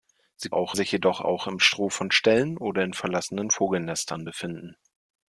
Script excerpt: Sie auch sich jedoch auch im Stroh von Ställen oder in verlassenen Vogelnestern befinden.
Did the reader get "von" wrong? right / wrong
right